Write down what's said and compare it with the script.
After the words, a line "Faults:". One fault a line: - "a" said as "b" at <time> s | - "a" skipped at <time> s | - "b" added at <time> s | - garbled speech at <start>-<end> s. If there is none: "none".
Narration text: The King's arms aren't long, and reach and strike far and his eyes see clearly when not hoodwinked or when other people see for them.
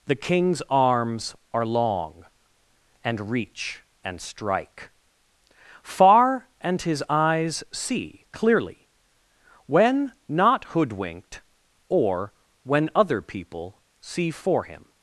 The King's arms are long, and reach and strike far and his eyes see clearly when not hoodwinked or when other people see for him.
Faults:
- "aren't" said as "are" at 1.5 s
- "them" said as "him" at 14.6 s